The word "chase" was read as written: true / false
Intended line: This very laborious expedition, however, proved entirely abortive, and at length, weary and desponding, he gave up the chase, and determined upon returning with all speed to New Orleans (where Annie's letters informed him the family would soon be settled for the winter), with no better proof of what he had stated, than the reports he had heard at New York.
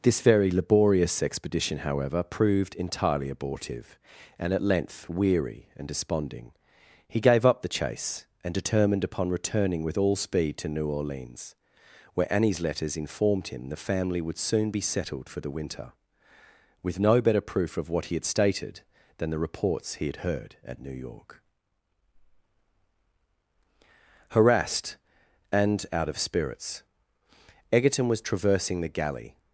true